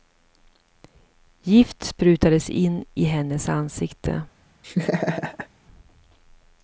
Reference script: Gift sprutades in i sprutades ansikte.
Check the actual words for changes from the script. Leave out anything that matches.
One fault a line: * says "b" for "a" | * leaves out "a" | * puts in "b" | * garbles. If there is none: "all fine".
* says "hennes" for "sprutades"